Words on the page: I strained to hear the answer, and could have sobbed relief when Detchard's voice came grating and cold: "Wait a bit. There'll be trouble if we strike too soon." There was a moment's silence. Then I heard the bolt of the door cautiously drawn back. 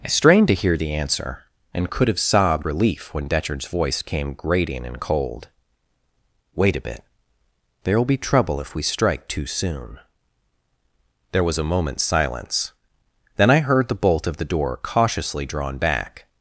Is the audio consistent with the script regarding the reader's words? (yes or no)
yes